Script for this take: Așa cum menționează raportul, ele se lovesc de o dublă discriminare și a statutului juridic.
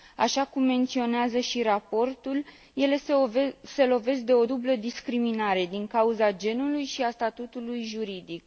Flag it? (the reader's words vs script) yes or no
yes